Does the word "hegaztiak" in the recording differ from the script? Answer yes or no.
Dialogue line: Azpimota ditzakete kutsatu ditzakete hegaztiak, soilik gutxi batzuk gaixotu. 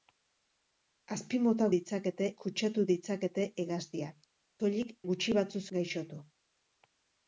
no